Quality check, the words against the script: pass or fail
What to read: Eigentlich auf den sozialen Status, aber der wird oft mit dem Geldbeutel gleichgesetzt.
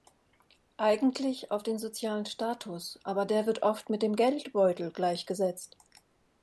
pass